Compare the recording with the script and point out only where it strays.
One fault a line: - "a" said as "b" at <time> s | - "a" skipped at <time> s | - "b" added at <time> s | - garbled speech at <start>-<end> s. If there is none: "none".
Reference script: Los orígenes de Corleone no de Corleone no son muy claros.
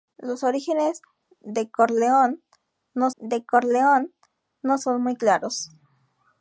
none